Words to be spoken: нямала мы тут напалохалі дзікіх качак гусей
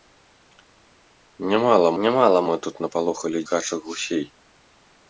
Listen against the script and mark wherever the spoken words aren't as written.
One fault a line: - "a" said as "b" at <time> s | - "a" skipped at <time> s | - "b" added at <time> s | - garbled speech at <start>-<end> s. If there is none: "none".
- "нямала" added at 2.0 s
- "дзікіх" skipped at 3.4 s